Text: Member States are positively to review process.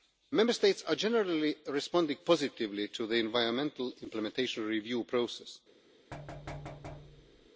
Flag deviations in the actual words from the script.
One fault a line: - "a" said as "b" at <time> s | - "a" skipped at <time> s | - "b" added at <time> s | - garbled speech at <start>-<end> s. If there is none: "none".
- "generally responding" added at 0.9 s
- "the environmental implementation" added at 3.0 s